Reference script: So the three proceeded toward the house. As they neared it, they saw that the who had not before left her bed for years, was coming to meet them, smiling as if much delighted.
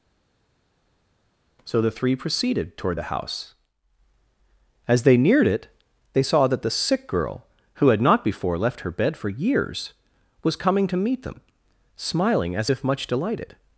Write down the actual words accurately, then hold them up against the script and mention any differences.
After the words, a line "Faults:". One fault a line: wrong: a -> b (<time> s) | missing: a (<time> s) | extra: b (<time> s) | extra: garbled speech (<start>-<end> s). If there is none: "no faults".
So the three proceeded toward the house. As they neared it, they saw that the sick girl, who had not before left her bed for years, was coming to meet them, smiling as if much delighted.
Faults:
extra: sick girl (6.7 s)